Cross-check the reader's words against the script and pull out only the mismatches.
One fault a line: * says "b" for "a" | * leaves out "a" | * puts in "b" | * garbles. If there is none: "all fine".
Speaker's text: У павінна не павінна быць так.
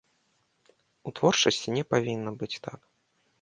* says "творчасці" for "павінна"